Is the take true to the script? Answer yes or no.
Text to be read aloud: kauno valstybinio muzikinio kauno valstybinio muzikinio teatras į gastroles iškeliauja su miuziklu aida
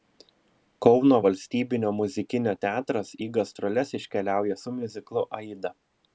no